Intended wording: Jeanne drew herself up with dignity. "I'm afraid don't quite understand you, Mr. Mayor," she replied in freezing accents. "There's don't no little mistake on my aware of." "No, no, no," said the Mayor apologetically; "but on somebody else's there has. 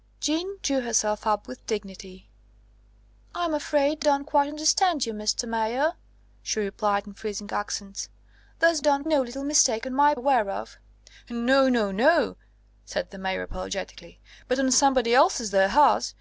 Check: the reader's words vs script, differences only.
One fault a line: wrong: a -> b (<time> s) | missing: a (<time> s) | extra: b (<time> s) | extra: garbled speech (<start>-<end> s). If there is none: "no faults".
no faults